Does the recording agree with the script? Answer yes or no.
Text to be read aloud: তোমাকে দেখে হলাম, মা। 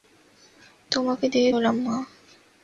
yes